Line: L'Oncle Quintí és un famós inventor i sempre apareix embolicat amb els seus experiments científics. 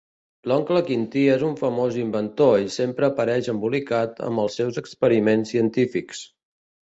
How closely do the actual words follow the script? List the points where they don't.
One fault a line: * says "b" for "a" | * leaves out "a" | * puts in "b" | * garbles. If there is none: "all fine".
all fine